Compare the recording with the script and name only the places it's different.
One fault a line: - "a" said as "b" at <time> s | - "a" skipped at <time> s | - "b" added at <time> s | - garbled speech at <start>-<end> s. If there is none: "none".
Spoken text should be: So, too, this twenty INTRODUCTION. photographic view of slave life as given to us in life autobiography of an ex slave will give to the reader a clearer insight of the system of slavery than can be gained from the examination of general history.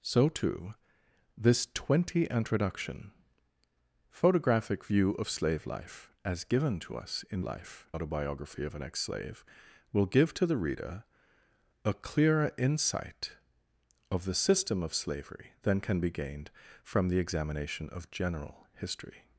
none